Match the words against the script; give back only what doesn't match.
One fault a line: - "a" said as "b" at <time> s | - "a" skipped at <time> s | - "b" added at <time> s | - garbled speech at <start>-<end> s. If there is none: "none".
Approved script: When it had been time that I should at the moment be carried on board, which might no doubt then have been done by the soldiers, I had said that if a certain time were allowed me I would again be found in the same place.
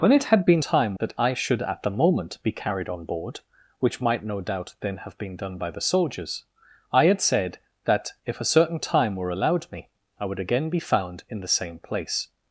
none